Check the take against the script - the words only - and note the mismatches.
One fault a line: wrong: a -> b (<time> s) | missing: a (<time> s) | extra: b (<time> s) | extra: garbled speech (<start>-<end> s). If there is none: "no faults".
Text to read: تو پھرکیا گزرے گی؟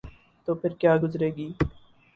no faults